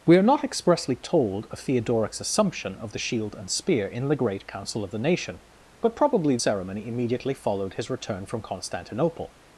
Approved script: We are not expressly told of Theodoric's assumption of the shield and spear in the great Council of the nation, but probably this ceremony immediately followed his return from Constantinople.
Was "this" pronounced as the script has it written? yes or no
no